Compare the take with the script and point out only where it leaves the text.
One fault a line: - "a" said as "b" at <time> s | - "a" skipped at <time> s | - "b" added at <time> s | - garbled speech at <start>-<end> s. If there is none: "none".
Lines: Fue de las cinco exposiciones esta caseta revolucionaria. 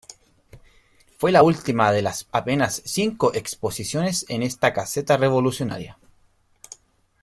- "la última" added at 1.3 s
- "apenas" added at 2.3 s
- "en" added at 4.3 s